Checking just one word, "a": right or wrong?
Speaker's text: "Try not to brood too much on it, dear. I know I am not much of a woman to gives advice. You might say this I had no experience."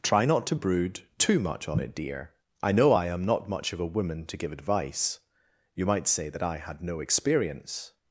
right